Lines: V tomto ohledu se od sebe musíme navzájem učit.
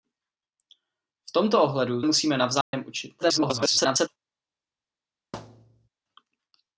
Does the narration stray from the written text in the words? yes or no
yes